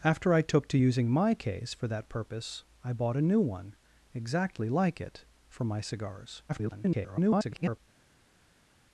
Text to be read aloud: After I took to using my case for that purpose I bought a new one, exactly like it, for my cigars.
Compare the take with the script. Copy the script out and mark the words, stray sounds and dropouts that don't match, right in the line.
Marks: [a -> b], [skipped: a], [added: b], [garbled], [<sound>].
After I took to using my case for that purpose I bought a new one, exactly like it, for my cigars. [garbled]